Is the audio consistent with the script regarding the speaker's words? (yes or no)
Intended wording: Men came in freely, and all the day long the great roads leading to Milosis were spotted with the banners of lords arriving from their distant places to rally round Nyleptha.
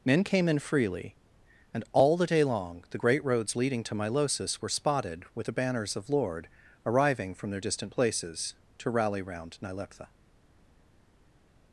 no